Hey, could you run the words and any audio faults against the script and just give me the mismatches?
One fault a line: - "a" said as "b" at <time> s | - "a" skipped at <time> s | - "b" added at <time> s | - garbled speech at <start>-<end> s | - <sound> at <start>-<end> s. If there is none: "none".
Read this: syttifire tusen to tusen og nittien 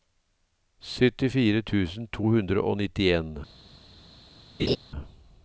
- "tusen" said as "hundre" at 2.2 s
- laugh at 4.6-4.8 s